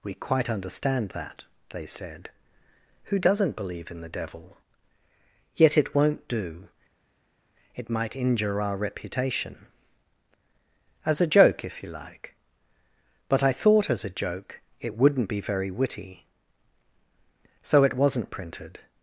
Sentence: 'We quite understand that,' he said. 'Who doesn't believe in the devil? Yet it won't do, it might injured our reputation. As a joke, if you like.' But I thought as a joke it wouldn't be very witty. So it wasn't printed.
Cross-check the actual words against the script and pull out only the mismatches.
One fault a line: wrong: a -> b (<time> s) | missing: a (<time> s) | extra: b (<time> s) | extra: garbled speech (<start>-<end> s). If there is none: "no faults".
wrong: he -> they (1.7 s)
wrong: injured -> injure (8.2 s)